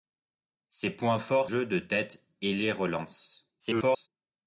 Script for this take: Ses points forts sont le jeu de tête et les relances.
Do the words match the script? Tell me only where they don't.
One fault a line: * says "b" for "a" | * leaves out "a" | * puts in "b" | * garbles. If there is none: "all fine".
* leaves out "sont le"
* garbles